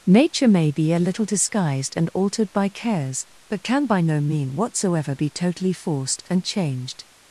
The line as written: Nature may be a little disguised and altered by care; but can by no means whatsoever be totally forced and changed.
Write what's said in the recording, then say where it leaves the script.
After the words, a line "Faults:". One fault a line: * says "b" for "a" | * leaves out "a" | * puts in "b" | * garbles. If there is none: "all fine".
Nature may be a little disguised and altered by cares; but can by no mean whatsoever be totally forced and changed.
Faults:
* says "cares" for "care"
* says "mean" for "means"